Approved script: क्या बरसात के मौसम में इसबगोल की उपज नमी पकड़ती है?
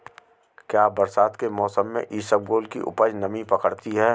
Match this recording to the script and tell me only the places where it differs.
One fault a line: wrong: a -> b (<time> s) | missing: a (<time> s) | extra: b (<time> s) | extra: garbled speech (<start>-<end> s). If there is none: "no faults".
no faults